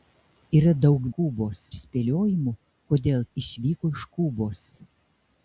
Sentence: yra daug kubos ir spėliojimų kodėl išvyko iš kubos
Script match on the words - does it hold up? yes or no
yes